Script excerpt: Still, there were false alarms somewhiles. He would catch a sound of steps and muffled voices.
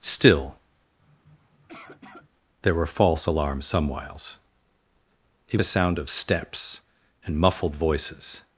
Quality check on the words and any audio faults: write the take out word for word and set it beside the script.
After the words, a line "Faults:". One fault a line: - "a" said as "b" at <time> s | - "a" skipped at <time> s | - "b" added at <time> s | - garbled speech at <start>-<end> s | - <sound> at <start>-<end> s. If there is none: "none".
Still, there were false alarms somewhiles. He a sound of steps and muffled voices.
Faults:
- sniff at 1.0-2.3 s
- "would catch" skipped at 5.6 s